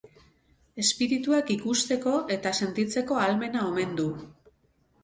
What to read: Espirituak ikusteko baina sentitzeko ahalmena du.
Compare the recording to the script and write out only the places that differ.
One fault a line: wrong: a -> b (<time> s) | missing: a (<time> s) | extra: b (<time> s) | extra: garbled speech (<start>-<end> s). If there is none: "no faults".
wrong: baina -> eta (2.4 s)
extra: omen (3.7 s)